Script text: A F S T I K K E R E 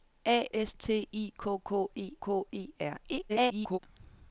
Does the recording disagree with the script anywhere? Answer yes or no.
yes